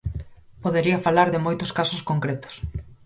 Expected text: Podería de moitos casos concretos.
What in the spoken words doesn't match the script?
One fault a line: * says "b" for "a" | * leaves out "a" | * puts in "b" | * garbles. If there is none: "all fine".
* puts in "falar"